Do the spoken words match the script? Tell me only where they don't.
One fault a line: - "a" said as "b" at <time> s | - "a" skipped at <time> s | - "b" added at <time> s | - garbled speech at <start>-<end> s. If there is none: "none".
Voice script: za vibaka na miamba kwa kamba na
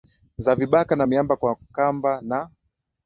none